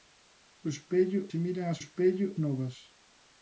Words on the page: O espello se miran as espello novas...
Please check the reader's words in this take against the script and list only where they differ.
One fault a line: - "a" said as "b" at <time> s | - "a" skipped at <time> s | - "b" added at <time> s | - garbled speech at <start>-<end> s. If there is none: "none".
none